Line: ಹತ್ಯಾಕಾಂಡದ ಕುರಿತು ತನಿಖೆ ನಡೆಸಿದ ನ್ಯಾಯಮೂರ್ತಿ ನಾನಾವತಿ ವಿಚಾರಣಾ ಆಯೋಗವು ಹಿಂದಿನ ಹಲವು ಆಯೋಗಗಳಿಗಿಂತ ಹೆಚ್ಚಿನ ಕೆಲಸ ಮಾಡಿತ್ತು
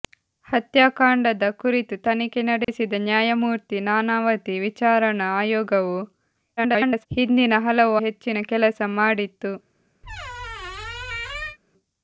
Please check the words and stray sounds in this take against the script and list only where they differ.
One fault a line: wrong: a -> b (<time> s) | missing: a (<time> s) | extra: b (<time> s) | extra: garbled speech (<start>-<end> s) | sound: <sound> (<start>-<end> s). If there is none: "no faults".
sound: dropout (2.6-2.7 s)
extra: garbled speech (6.6-7.1 s)
missing: ಆಯೋಗಗಳಿಗಿಂತ (8.0 s)
sound: squeak (10.0-11.6 s)